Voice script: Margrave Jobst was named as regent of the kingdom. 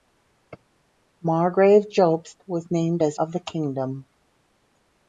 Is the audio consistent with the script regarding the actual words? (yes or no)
no